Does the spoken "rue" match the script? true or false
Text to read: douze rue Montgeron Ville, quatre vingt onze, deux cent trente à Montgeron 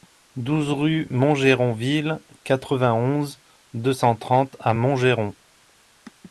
true